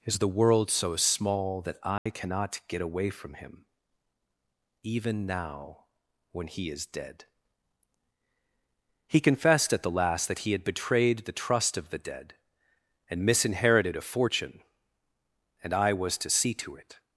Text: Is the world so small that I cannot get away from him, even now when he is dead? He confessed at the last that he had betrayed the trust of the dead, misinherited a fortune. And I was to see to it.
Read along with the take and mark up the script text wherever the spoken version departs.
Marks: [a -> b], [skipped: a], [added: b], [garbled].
Is the world so small that I cannot get away from him, even now when he is dead? He confessed at the last that he had betrayed the trust of the dead, [added: and] misinherited a fortune. And I was to see to it.